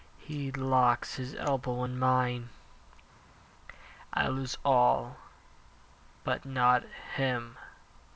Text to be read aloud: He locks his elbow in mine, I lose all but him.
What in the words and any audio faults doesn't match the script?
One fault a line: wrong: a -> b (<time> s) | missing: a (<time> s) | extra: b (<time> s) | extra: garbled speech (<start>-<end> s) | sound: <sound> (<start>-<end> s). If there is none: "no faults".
extra: not (6.4 s)